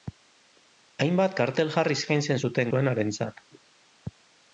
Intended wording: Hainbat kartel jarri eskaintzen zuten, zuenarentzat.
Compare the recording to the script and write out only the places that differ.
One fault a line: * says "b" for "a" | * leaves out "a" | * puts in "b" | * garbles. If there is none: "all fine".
all fine